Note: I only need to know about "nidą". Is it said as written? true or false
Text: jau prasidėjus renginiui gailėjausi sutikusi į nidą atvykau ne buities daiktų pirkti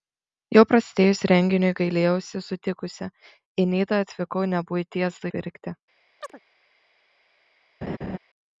true